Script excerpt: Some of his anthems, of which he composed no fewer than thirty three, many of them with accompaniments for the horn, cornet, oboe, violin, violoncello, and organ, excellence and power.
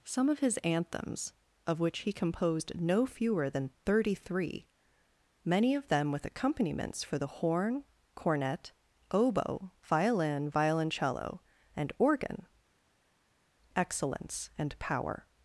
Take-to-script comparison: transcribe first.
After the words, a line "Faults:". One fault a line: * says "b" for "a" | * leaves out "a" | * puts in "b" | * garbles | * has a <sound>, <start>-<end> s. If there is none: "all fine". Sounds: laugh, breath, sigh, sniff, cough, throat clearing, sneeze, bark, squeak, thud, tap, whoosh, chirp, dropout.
Some of his anthems, of which he composed no fewer than thirty three, many of them with accompaniments for the horn, cornet, oboe, violin, violoncello, and organ, excellence and power.
Faults:
all fine